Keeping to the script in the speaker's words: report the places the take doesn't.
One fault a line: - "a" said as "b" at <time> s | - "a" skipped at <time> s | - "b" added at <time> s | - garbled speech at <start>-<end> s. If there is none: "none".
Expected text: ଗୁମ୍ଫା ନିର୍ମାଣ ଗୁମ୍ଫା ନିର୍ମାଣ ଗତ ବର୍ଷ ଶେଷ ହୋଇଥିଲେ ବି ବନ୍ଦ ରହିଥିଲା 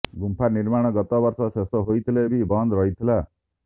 - "ଗୁମ୍ଫା ନିର୍ମାଣ" skipped at 0.9 s